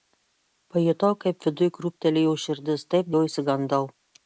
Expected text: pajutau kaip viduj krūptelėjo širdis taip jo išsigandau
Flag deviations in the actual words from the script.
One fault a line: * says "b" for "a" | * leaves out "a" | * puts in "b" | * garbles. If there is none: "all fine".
all fine